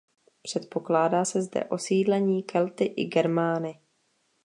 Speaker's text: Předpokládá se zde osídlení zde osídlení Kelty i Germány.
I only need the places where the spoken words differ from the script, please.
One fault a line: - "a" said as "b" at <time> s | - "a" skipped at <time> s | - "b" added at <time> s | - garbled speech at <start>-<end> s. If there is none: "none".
- "zde osídlení" skipped at 2.4 s